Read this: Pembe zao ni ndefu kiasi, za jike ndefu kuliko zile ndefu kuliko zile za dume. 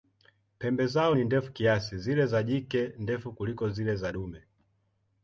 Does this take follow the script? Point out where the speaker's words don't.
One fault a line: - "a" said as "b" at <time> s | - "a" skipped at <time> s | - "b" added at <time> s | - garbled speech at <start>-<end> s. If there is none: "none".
- "zile" added at 2.0 s
- "ndefu kuliko zile" skipped at 4.0 s